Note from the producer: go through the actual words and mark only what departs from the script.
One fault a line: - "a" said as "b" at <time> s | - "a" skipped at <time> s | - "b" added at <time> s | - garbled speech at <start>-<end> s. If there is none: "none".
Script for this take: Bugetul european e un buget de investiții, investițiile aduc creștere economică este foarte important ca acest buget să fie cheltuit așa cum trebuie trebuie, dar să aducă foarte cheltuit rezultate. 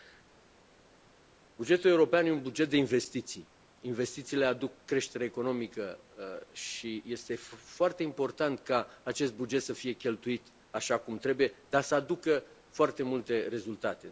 - "și" added at 6.5 s
- "trebuie" skipped at 11.5 s
- "cheltuit" said as "multe" at 13.0 s